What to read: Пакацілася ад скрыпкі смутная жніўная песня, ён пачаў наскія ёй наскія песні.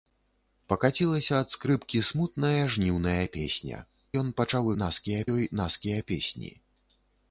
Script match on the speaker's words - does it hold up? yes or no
yes